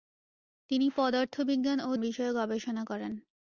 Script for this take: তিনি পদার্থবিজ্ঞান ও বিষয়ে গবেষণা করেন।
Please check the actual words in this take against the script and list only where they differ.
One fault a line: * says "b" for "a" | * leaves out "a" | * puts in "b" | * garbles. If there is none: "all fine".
all fine